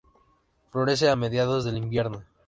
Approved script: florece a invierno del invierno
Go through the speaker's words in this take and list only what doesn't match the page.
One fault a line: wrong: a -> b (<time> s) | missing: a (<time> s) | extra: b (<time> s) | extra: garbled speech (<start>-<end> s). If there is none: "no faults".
wrong: invierno -> mediados (1.1 s)